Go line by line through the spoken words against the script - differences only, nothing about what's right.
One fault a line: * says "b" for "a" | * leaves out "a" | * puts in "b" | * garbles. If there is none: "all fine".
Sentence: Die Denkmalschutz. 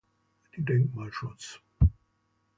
all fine